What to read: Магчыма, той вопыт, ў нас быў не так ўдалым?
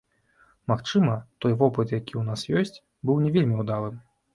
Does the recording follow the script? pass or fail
fail